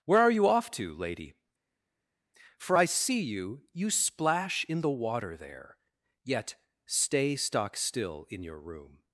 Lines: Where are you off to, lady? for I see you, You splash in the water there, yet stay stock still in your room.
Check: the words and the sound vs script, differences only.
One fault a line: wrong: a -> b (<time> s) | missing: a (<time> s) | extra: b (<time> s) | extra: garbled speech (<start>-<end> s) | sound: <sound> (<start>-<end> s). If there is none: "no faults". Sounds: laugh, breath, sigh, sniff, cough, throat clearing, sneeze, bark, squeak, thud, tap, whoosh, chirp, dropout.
no faults